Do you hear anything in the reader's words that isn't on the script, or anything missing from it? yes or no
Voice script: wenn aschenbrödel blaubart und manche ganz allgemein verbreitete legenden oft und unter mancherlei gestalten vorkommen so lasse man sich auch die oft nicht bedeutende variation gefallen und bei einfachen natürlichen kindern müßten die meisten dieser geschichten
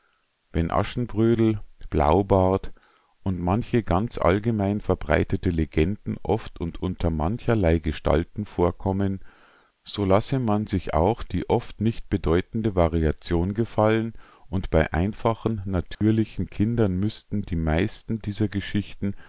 no